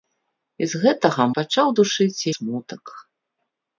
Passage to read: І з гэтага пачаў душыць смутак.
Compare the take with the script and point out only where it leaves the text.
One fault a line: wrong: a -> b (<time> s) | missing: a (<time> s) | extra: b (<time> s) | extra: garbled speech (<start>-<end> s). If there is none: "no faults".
no faults